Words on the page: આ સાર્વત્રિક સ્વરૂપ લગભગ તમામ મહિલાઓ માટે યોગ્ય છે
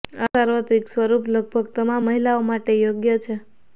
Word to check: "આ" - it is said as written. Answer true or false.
true